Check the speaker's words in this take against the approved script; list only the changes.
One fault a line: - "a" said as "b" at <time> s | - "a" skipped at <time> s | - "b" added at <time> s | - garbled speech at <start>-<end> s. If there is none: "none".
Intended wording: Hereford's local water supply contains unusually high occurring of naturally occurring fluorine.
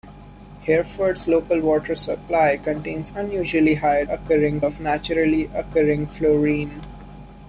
none